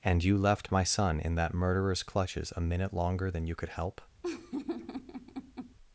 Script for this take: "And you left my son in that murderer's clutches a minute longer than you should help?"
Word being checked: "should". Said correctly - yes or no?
no